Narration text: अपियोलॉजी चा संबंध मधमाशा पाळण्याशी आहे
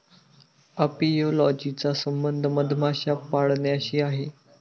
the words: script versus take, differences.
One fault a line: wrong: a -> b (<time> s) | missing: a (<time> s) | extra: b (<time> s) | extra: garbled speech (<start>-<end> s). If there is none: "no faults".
no faults